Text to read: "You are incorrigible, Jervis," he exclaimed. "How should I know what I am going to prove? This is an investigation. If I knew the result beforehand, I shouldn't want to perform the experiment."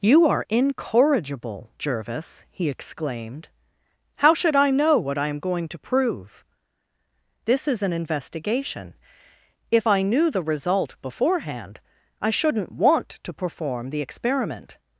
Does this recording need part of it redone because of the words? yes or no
no